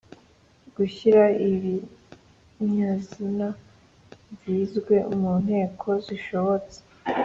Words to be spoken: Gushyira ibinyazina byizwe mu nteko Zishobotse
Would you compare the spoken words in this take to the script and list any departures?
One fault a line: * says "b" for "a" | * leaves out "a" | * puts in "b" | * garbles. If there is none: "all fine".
all fine